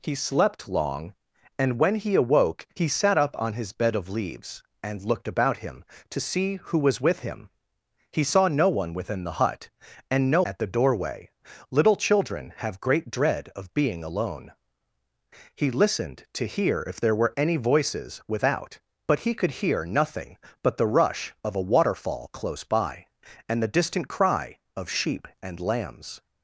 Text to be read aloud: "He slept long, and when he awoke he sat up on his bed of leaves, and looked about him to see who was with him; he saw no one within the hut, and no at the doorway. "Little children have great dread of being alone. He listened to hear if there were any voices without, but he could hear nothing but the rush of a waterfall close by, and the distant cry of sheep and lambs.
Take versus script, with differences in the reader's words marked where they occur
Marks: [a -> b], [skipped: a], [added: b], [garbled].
"He slept long, and when he awoke he sat up on his bed of leaves, and looked about him to see who was with him; he saw no one within the hut, and no at the doorway. "Little children have great dread of being alone. He listened to hear if there were any voices without, but he could hear nothing but the rush of a waterfall close by, and the distant cry of sheep and lambs.